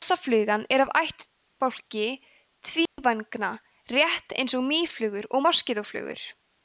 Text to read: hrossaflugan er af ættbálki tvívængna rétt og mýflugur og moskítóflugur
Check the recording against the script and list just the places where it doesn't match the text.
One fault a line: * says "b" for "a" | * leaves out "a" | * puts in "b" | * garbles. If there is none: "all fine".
* puts in "eins"